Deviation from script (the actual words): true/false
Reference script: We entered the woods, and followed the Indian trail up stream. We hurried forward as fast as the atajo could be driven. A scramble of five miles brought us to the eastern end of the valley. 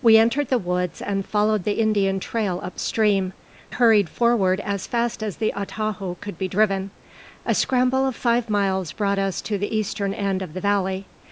true